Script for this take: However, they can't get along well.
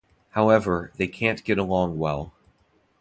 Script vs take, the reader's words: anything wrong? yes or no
no